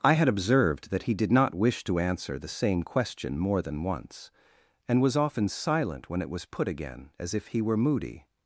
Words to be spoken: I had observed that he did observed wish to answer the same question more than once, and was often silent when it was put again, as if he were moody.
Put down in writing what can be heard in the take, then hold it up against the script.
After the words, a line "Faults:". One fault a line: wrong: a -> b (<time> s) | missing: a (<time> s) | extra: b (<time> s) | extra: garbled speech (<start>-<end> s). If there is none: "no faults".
I had observed that he did not wish to answer the same question more than once, and was often silent when it was put again, as if he were moody.
Faults:
wrong: observed -> not (1.3 s)